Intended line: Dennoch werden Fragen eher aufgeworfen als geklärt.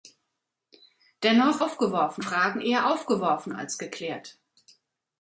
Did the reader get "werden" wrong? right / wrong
wrong